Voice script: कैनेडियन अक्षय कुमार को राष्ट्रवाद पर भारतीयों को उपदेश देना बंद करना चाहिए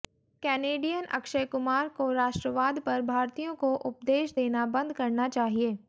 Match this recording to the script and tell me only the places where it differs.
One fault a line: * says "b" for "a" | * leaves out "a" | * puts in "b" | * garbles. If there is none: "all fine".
all fine